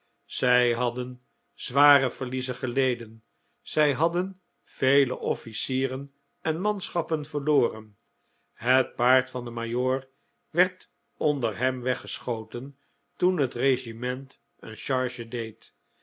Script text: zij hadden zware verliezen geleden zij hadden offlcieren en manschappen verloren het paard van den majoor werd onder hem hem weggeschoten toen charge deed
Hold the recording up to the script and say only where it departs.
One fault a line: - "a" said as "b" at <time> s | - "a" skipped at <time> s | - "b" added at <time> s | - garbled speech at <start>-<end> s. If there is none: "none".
- "vele" added at 4.6 s
- "hem" skipped at 11.8 s
- "het regiment een" added at 13.4 s